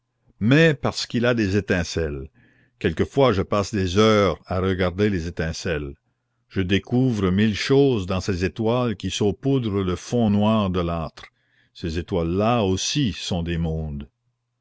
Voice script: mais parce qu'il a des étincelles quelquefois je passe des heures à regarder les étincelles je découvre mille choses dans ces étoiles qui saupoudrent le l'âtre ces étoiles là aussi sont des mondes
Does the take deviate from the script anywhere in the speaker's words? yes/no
yes